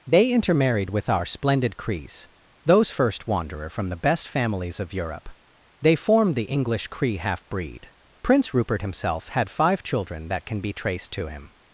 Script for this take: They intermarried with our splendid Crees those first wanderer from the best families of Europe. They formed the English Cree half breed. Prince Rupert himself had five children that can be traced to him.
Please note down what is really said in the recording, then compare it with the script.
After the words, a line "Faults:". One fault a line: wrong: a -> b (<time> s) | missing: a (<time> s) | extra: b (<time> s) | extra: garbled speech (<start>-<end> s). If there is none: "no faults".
They intermarried with our splendid Crees those first wanderer from the best families of Europe. They formed the English Cree half breed. Prince Rupert himself had five children that can be traced to him.
Faults:
no faults